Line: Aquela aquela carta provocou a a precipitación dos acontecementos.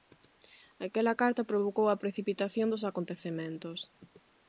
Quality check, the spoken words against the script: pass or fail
fail